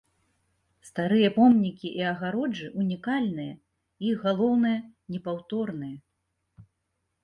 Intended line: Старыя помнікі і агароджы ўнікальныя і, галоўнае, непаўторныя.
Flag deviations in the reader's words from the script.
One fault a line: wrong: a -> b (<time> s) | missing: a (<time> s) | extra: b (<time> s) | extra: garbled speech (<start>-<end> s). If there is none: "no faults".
no faults